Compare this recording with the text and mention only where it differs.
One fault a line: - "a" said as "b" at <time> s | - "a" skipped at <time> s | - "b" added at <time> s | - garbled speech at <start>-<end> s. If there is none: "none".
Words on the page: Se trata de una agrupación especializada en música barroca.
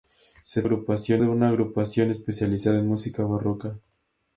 - "trata" said as "agrupación" at 0.6 s